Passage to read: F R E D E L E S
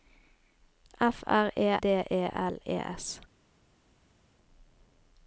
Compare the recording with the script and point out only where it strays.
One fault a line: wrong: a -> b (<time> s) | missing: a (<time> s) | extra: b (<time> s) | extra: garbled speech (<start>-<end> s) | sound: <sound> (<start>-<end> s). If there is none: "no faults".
no faults